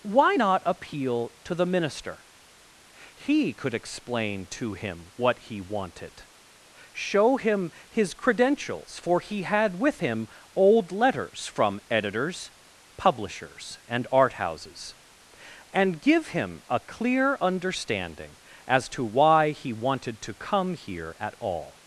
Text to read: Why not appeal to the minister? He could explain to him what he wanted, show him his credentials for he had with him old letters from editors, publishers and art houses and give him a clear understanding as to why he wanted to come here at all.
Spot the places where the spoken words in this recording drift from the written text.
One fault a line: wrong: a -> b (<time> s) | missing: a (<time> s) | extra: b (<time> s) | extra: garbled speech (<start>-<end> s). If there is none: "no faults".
no faults